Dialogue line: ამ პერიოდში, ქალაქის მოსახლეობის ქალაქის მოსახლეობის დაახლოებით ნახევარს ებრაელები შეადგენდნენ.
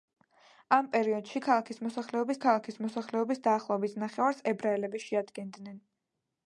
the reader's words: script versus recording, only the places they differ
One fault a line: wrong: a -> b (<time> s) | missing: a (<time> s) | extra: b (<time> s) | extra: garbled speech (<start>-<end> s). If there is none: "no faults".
no faults